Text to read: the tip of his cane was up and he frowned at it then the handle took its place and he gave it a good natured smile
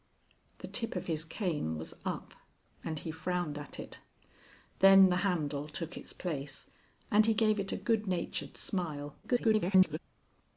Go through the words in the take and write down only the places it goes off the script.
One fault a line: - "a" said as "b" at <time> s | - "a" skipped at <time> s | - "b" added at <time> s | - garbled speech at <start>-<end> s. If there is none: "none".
- garbled speech at 9.2-10.0 s